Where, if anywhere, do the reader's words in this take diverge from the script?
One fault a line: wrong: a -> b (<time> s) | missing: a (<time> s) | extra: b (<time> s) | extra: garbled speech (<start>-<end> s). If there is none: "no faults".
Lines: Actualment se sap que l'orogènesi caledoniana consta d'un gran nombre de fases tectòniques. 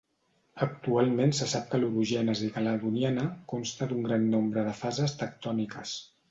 no faults